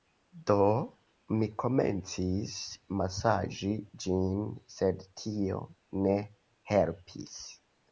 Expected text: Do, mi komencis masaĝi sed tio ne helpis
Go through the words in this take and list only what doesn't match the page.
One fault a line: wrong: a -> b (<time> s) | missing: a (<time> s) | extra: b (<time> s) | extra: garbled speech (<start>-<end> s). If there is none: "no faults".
extra: ĝin (4.1 s)